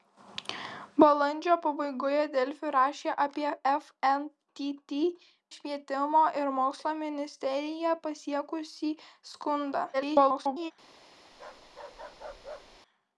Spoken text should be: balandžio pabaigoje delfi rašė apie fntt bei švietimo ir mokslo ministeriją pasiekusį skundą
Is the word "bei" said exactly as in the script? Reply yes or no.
no